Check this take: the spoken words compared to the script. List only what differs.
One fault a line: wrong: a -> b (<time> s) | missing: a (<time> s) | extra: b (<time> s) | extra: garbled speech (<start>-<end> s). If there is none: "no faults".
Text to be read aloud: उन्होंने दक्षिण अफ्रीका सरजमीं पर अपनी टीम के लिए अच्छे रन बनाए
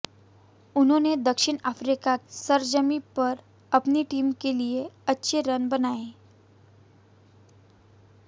no faults